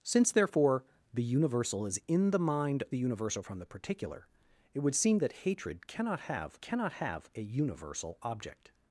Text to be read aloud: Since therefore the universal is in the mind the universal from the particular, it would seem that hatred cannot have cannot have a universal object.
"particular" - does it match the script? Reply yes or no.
yes